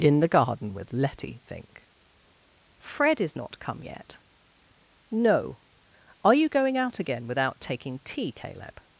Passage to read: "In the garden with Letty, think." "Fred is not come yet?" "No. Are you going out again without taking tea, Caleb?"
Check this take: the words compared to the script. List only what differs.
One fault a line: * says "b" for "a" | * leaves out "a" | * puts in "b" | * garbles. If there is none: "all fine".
all fine